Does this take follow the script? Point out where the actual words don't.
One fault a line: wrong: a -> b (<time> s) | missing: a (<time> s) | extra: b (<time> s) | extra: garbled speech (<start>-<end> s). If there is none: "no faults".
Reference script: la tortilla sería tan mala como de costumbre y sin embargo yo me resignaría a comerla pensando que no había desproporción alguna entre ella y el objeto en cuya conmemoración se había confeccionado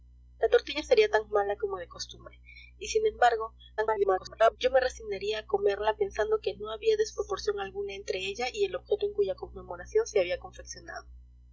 extra: garbled speech (3.8-4.6 s)